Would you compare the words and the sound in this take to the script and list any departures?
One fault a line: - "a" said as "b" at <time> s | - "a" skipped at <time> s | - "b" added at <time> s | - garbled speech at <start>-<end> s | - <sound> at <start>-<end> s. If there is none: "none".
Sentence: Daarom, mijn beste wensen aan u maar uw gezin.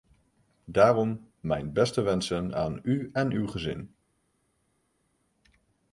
- "maar" said as "en" at 3.1 s